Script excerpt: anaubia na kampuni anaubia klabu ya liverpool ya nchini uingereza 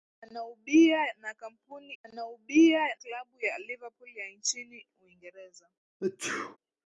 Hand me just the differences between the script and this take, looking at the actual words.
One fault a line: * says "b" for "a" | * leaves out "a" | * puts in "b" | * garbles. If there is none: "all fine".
all fine